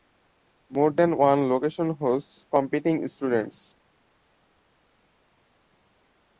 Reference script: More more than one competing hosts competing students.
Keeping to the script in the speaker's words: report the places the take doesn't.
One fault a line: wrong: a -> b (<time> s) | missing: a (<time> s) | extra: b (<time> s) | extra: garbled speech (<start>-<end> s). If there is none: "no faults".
missing: more (0.9 s)
wrong: competing -> location (1.5 s)